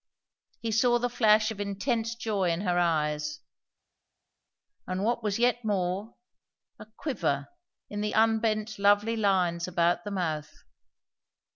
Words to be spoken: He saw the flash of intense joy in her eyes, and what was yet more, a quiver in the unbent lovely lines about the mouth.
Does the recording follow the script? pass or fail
pass